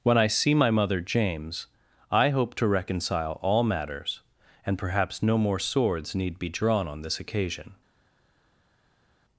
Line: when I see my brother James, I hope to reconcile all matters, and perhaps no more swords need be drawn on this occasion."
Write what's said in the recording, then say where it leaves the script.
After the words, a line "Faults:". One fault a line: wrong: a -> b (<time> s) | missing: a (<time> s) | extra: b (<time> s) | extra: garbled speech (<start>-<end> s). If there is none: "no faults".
when I see my mother James, I hope to reconcile all matters, and perhaps no more swords need be drawn on this occasion."
Faults:
wrong: brother -> mother (0.7 s)